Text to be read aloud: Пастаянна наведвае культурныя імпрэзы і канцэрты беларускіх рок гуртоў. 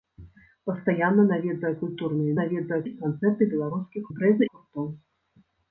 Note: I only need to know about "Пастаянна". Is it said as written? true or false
true